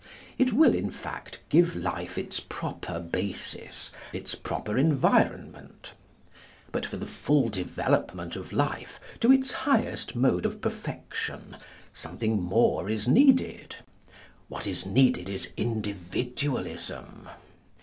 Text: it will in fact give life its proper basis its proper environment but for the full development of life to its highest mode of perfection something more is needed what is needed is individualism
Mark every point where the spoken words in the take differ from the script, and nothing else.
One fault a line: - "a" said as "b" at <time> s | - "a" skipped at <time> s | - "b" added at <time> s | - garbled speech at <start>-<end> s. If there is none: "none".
none